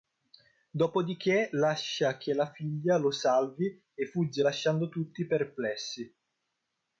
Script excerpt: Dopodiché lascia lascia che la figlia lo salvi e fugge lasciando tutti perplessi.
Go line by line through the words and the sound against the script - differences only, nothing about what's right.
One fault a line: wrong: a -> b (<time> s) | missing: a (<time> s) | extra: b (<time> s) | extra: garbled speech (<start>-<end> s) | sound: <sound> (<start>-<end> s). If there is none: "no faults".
missing: lascia (2.2 s)